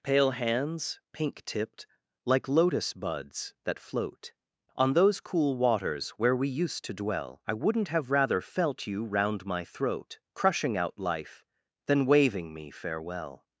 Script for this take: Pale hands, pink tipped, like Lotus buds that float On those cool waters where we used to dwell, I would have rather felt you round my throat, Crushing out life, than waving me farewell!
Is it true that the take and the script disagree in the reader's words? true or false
true